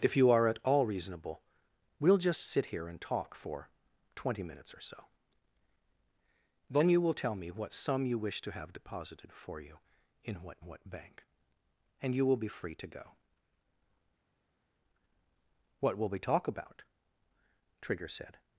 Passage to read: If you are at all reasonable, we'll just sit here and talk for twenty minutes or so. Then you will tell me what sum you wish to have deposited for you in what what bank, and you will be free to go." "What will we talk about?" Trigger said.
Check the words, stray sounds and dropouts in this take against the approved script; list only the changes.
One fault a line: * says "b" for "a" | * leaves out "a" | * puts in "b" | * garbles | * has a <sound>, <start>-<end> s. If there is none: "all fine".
all fine